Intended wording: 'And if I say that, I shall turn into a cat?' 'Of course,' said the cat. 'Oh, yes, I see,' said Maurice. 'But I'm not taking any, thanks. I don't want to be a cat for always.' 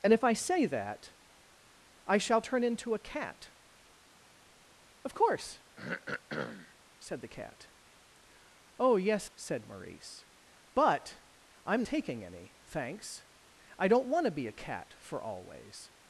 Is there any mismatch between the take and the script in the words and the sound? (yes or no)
yes